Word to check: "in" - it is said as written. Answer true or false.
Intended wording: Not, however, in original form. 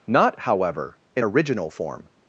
true